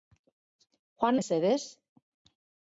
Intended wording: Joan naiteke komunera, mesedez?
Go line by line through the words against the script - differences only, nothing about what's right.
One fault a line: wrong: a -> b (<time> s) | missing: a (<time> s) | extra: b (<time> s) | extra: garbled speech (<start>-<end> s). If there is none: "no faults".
missing: naiteke komunera (1.2 s)